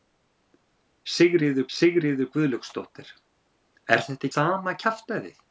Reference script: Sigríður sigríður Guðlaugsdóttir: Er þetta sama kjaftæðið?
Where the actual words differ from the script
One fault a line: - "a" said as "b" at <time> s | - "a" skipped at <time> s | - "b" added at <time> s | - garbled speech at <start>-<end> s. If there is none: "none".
none